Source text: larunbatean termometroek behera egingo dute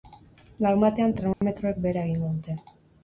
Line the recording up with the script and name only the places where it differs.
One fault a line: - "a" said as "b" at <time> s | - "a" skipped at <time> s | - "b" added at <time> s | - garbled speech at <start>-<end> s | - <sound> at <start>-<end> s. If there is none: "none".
- dropout at 1.3-1.4 s